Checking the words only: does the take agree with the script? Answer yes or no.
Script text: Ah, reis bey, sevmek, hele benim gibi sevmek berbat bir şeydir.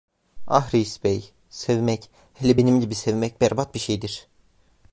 yes